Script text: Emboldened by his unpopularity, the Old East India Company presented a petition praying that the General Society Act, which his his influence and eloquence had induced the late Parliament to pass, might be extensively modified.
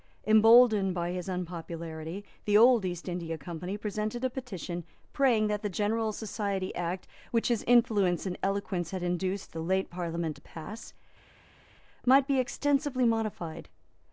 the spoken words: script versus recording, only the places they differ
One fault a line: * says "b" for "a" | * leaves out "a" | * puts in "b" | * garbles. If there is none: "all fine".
* leaves out "his"